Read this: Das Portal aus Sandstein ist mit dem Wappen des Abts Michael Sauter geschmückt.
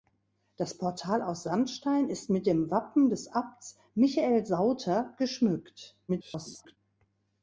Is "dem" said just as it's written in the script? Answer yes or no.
yes